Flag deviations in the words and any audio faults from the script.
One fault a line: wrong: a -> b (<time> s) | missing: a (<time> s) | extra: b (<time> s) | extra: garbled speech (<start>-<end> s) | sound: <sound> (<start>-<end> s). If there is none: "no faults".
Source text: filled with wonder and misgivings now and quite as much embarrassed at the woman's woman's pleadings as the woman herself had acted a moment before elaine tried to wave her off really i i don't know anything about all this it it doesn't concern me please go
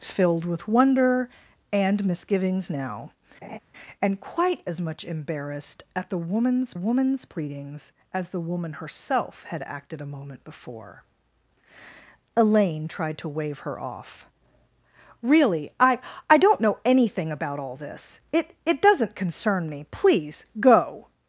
sound: laugh (3.4-3.6 s)